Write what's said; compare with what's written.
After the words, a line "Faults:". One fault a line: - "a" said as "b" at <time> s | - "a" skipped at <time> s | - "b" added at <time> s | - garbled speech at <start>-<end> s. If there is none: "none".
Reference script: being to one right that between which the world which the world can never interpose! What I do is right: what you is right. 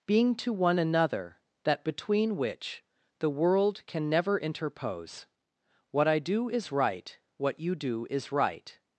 being to one another that between which the world can never interpose! What I do is right: what you do is right.
Faults:
- "right" said as "another" at 0.8 s
- "which the world" skipped at 3.8 s
- "do" added at 7.8 s